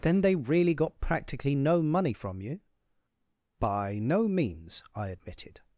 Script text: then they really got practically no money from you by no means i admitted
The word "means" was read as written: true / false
true